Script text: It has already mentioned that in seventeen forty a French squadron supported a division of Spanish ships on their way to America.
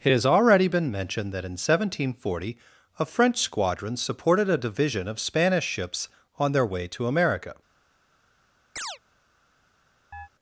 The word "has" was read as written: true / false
true